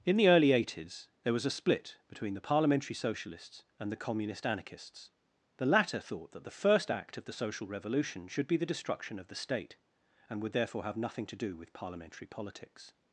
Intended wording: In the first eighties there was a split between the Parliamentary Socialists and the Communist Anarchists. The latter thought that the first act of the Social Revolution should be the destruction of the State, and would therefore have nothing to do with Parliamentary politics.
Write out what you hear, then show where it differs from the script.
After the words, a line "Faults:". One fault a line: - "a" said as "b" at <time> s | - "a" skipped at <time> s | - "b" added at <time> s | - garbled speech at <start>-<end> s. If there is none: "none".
In the early eighties there was a split between the Parliamentary Socialists and the Communist Anarchists. The latter thought that the first act of the Social Revolution should be the destruction of the State, and would therefore have nothing to do with Parliamentary politics.
Faults:
- "first" said as "early" at 0.3 s